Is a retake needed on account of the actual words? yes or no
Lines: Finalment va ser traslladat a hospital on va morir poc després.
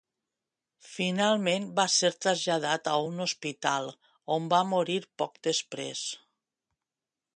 yes